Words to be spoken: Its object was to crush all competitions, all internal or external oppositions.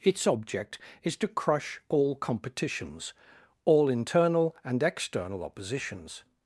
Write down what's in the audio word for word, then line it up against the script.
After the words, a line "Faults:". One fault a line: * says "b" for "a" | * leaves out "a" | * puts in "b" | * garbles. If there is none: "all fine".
Its object is to crush all competitions, all internal and external oppositions.
Faults:
* says "is" for "was"
* says "and" for "or"